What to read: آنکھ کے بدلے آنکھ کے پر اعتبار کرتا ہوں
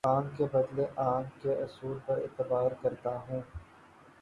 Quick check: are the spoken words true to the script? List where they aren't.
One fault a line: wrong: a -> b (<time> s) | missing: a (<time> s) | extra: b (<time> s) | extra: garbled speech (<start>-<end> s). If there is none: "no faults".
extra: اصول (1.6 s)